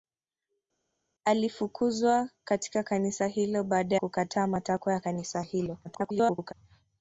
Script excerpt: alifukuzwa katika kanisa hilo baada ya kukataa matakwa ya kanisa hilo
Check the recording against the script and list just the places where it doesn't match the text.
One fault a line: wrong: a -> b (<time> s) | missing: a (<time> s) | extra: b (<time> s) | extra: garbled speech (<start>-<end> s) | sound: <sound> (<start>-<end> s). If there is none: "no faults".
missing: ya (4.0 s)
extra: garbled speech (5.8-6.5 s)